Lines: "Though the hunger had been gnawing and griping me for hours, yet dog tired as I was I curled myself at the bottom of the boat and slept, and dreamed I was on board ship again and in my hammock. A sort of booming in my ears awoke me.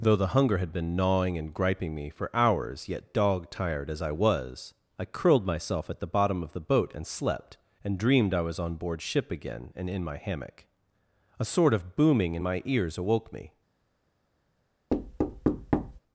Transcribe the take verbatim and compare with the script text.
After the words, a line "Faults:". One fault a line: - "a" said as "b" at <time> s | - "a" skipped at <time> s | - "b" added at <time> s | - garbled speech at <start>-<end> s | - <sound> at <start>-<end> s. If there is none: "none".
"Though the hunger had been gnawing and griping me for hours, yet dog tired as I was I curled myself at the bottom of the boat and slept, and dreamed I was on board ship again and in my hammock. A sort of booming in my ears awoke me.
Faults:
- thud at 14.9-16.0 s